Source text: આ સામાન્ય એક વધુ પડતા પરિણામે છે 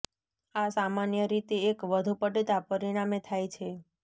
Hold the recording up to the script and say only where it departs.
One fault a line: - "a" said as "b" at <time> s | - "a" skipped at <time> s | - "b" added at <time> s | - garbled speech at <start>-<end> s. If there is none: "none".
- "રીતે" added at 1.3 s
- "થાય" added at 3.3 s